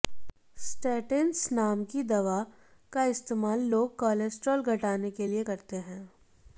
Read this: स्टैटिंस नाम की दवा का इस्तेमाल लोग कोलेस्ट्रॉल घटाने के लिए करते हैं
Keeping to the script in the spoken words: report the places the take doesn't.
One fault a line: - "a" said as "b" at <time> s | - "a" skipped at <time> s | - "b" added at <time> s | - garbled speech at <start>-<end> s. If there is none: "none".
none